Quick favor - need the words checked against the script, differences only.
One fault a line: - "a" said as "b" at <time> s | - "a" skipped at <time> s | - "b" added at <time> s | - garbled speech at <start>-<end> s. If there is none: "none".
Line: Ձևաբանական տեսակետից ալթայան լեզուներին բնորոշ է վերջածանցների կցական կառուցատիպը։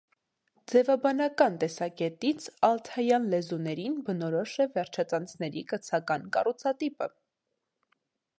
none